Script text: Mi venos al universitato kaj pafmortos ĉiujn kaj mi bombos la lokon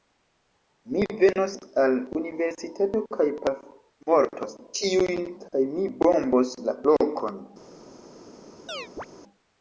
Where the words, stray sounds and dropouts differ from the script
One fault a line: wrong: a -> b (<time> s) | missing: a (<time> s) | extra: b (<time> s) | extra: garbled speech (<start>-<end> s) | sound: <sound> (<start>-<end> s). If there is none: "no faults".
sound: chirp (8.7-9.1 s)